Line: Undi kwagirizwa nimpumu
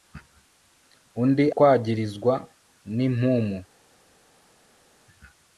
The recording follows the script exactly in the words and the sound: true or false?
true